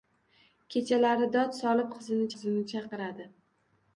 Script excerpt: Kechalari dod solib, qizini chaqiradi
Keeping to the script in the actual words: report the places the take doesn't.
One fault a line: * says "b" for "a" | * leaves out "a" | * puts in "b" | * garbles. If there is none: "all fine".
* puts in "qizini"